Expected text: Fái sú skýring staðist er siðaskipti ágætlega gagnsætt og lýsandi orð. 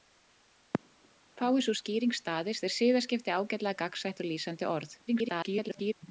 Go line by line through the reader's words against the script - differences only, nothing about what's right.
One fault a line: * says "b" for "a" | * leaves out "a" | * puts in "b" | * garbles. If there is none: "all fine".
* garbles